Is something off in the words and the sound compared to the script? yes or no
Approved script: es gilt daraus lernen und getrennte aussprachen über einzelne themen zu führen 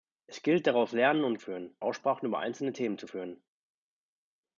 yes